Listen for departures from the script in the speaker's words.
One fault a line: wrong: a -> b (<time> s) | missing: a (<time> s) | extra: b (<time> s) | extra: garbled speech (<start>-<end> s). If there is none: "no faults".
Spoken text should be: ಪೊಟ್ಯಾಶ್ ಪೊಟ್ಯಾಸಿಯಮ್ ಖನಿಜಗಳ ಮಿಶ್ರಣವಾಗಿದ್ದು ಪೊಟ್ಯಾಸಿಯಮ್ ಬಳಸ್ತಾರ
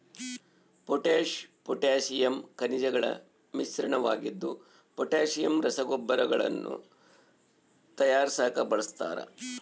extra: ರಸಗೊಬ್ಬರಗಳನ್ನು ತಯಾರಿಸಾಕ (5.6 s)